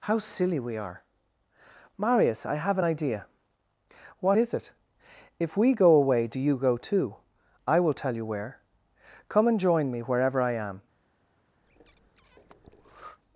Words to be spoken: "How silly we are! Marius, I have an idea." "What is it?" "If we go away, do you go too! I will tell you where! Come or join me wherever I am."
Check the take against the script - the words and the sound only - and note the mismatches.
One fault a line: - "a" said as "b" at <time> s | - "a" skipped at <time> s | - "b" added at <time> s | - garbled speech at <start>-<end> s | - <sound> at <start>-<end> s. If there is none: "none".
- "or" said as "and" at 9.5 s
- breath at 11.6-13.2 s